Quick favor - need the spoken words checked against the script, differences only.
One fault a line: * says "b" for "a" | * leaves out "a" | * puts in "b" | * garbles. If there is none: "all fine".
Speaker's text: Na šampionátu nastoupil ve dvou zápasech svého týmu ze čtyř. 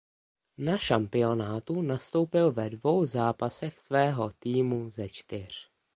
all fine